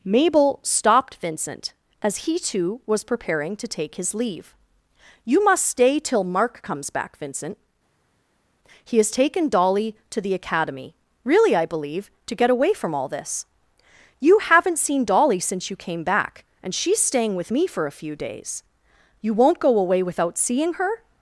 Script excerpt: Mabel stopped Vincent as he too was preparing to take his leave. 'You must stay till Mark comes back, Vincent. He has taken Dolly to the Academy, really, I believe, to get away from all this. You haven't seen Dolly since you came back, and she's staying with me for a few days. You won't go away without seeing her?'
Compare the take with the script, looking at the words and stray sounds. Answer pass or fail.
pass